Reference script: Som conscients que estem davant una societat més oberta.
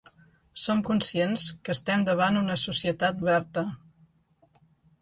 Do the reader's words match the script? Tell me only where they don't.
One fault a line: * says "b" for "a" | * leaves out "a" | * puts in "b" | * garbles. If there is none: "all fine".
* leaves out "més"